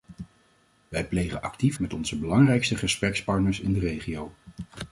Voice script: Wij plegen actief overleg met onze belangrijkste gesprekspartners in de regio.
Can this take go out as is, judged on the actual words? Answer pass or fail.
fail